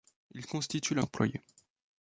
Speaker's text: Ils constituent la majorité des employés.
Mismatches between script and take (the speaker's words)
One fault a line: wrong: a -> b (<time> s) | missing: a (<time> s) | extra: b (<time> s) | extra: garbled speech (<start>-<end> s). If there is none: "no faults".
missing: majorité des (1.0 s)